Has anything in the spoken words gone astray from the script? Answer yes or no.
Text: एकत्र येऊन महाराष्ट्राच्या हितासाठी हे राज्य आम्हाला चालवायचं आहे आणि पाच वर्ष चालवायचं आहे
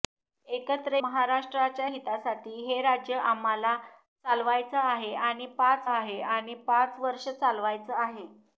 yes